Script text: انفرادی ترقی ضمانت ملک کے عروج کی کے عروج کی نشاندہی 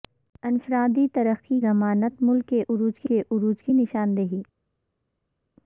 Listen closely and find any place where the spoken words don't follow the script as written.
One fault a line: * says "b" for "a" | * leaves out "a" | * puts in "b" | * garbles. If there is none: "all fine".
all fine